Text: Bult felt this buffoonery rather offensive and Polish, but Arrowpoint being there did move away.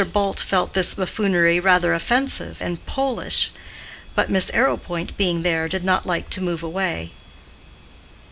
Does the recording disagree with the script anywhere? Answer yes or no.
yes